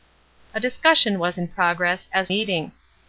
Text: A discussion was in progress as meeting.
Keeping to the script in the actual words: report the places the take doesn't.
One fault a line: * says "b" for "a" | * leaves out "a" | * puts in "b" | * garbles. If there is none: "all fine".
all fine